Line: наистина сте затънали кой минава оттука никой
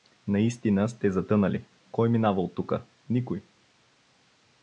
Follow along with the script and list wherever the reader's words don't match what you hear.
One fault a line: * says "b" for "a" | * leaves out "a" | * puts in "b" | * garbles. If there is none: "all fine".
all fine